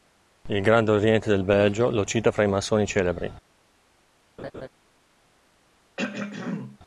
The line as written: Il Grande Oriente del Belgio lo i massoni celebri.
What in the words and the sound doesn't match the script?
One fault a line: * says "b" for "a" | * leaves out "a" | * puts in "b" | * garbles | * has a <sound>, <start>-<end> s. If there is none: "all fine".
* puts in "cita fra"
* has a laugh, 4.4-4.7 s
* has a throat clearing, 6.0-6.8 s